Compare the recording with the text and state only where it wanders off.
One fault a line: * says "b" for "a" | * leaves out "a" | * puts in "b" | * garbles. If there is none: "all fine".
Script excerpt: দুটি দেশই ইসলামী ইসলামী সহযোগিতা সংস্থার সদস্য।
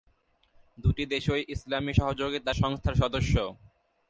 * leaves out "ইসলামী"